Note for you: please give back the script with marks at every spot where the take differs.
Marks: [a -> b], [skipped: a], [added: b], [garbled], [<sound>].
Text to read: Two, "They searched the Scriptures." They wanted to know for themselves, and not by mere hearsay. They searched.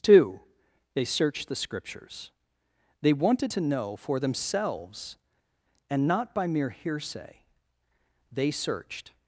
Two, "They searched the Scriptures." They wanted to know for themselves, and not by mere hearsay. They searched.